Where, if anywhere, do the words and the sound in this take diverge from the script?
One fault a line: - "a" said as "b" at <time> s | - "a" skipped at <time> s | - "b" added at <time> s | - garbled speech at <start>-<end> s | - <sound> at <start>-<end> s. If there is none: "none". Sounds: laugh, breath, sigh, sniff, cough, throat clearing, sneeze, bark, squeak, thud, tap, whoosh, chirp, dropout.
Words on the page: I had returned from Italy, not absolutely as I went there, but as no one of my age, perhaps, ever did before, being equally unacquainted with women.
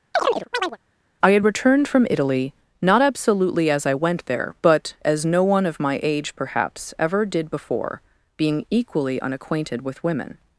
- chirp at 0.1-0.8 s